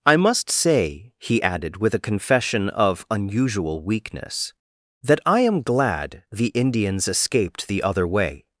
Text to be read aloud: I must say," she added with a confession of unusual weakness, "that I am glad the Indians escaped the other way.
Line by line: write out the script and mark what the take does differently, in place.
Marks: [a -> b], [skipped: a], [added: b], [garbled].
I must say," [she -> he] added with a confession of unusual weakness, "that I am glad the Indians escaped the other way.